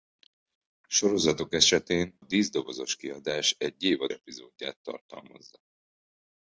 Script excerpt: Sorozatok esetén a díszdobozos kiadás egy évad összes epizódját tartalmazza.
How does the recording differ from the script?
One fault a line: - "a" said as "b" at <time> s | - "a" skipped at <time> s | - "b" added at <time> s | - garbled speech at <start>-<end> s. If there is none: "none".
- "a" skipped at 2.1 s
- "összes" skipped at 4.1 s